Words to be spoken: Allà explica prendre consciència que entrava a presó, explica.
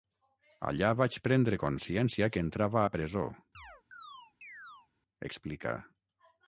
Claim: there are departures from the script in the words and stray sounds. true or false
true